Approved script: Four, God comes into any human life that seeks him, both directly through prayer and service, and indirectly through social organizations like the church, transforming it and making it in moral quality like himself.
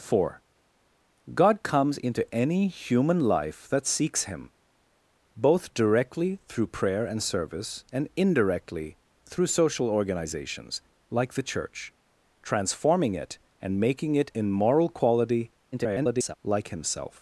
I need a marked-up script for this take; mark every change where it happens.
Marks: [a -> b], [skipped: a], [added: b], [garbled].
Four, God comes into any human life that seeks him, both directly through prayer and service, and indirectly through social organizations like the church, transforming it and making it in moral quality [garbled] like himself.